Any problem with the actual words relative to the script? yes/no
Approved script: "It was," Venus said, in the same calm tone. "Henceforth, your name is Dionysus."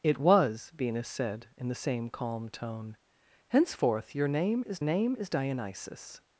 yes